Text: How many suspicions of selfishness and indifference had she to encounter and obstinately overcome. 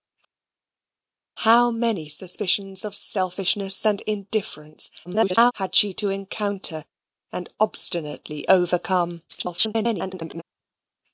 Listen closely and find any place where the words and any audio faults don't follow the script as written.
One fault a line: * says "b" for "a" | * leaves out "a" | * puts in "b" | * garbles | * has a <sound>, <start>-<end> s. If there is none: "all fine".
* garbles
* garbles